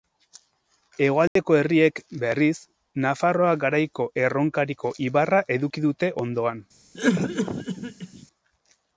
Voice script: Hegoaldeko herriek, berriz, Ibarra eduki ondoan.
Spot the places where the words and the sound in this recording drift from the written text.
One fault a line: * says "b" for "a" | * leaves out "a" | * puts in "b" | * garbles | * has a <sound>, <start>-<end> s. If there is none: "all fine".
* has a dropout, 1.3-1.4 s
* puts in "Nafarroa Garaiko Erronkariko"
* puts in "dute"
* has a cough, 6.9-8.3 s